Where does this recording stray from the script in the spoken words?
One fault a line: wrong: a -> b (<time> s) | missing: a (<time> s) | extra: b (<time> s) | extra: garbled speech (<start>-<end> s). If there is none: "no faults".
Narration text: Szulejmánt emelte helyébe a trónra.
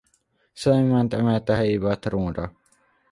no faults